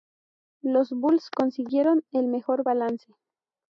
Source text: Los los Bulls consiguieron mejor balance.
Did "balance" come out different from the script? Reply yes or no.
no